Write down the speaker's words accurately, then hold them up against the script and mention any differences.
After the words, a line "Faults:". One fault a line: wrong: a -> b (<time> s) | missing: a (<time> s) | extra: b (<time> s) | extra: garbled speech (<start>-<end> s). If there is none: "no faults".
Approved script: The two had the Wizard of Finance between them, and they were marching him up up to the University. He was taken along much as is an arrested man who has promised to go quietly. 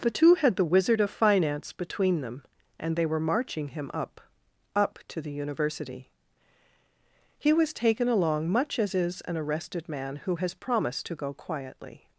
The two had the Wizard of Finance between them, and they were marching him up up to the University. He was taken along much as is an arrested man who has promised to go quietly.
Faults:
no faults